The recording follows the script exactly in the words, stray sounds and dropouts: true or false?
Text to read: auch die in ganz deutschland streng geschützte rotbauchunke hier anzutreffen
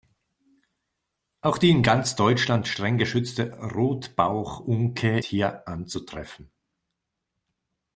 true